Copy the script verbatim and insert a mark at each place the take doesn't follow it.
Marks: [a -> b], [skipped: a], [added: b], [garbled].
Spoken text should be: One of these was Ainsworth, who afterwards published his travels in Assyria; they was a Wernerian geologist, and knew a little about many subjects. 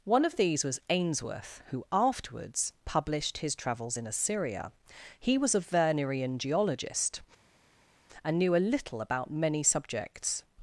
One of these was Ainsworth, who afterwards published his travels in Assyria; [they -> he] was a Wernerian geologist, and knew a little about many subjects.